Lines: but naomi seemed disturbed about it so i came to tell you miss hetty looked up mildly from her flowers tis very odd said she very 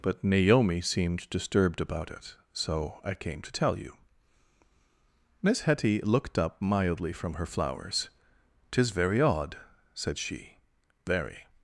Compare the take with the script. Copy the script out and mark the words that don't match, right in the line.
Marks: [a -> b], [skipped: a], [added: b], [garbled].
but naomi seemed disturbed about it so i came to tell you miss hetty looked up mildly from her flowers tis very odd said she very